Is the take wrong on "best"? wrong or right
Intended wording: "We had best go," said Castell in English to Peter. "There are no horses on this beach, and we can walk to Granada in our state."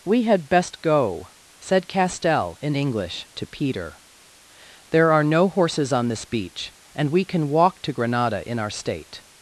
right